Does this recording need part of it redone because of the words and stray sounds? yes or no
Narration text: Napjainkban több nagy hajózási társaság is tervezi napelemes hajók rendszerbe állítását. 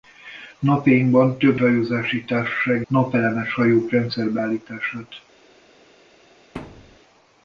yes